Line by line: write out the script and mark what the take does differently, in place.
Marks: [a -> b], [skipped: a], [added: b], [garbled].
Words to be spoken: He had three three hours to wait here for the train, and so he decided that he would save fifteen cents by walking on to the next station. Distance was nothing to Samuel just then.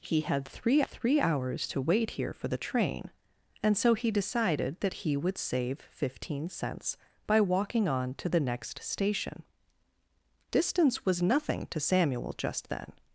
He had three three hours to wait here for the train, and so he decided that he would save fifteen cents by walking on to the next station. Distance was nothing to Samuel just then.